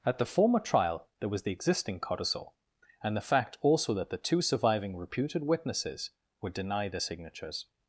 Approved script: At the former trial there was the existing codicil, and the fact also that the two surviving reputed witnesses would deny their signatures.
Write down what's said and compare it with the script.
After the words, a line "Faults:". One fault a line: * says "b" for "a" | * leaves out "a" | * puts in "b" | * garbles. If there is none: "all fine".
At the former trial there was the existing codicil, and the fact also that the two surviving reputed witnesses would deny their signatures.
Faults:
all fine